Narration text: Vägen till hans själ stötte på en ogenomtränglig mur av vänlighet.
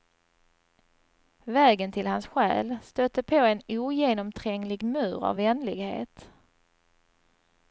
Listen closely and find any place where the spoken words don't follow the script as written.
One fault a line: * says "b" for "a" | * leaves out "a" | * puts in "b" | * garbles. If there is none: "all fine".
all fine